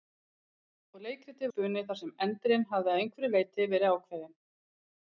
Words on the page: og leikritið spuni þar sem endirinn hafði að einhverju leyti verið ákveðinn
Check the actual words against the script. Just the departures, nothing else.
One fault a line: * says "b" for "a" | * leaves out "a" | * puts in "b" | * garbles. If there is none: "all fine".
all fine